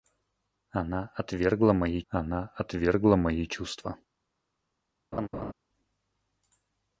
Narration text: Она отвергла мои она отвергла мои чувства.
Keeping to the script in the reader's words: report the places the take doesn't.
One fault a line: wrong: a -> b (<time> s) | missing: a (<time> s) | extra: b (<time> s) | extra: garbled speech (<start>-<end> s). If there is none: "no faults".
no faults